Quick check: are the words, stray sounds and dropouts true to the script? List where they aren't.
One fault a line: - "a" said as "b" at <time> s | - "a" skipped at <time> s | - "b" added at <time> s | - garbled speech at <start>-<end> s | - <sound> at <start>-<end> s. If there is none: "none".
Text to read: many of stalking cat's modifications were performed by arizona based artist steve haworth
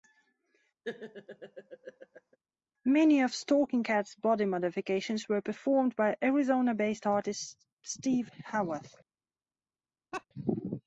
- laugh at 0.8-2.4 s
- "body" added at 4.2 s
- laugh at 10.1-10.2 s